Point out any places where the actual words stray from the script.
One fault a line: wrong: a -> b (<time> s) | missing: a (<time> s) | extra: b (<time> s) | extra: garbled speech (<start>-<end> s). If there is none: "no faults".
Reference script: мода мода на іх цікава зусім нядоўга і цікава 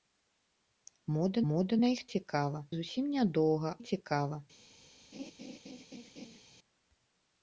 no faults